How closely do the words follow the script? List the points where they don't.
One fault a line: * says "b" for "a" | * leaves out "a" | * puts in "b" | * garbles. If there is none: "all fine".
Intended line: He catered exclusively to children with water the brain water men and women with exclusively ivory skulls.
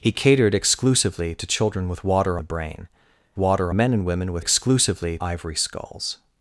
all fine